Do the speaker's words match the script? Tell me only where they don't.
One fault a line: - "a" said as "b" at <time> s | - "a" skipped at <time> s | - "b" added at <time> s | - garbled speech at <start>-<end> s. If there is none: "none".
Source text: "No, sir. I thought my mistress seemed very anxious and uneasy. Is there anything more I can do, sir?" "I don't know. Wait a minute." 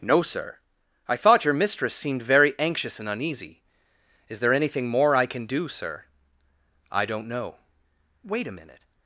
- "my" said as "your" at 1.4 s